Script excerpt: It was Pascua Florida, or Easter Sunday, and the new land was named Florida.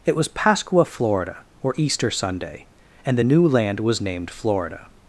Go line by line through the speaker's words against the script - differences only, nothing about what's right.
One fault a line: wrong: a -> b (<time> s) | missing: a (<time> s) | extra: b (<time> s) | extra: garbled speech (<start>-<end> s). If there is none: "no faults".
no faults